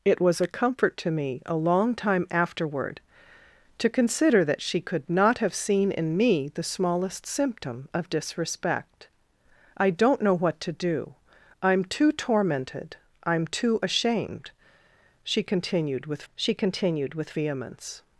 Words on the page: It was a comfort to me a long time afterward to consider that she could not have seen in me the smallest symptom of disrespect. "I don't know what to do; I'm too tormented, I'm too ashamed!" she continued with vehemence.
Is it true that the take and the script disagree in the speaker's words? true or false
true